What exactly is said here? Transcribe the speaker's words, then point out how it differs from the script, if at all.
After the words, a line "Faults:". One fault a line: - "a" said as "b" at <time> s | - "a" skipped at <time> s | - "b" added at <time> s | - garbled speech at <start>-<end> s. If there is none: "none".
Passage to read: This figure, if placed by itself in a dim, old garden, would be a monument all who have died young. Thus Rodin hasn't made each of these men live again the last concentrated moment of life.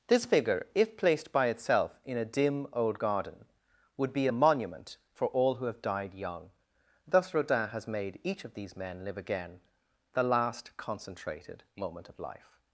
This figure, if placed by itself in a dim, old garden, would be a monument for all who have died young. Thus Rodin has made each of these men live again the last concentrated moment of life.
Faults:
- "for" added at 5.1 s
- "hasn't" said as "has" at 7.7 s